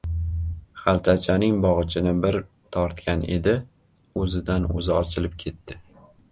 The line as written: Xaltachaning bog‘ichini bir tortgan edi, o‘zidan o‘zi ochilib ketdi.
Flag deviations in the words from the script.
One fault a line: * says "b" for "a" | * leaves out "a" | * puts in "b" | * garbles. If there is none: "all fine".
all fine